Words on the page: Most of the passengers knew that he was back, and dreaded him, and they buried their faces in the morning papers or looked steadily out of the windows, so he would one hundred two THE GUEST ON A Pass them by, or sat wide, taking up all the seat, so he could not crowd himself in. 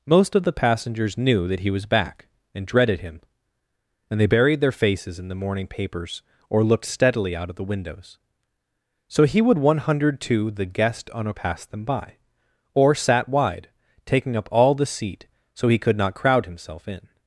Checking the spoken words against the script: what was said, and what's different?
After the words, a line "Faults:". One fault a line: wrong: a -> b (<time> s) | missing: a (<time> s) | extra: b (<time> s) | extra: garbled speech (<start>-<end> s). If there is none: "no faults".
Most of the passengers knew that he was back, and dreaded him, and they buried their faces in the morning papers or looked steadily out of the windows, so he would one hundred two THE GUEST ON A Pass them by, or sat wide, taking up all the seat, so he could not crowd himself in.
Faults:
no faults